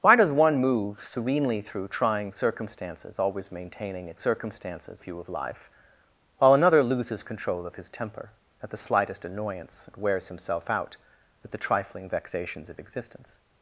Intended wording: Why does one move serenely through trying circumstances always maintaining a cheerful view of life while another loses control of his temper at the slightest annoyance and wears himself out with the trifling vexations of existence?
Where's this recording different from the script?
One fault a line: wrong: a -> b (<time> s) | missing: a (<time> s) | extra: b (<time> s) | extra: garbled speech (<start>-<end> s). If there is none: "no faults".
wrong: cheerful -> circumstances (4.2 s)